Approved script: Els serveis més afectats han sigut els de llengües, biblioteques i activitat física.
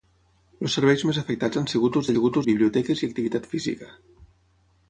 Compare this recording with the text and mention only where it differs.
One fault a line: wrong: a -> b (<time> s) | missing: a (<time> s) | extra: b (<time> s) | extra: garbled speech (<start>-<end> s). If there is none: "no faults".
wrong: llengües -> sigut (2.2 s)